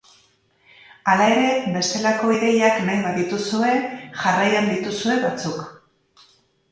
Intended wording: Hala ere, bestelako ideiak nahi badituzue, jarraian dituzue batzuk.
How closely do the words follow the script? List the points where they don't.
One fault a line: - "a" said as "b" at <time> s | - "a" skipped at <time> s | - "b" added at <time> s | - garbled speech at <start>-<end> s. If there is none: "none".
none